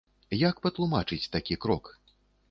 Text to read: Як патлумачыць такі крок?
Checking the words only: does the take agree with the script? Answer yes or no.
yes